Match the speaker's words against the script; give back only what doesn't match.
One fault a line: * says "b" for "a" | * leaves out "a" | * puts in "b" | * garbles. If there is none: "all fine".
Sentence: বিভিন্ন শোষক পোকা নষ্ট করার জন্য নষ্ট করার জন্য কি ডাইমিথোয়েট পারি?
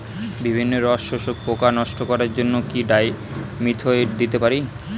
* puts in "রস"
* leaves out "নষ্ট করার জন্য"
* puts in "দিতে"